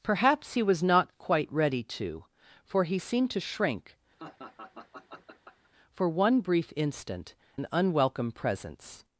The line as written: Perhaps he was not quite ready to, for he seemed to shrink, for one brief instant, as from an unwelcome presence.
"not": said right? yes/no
yes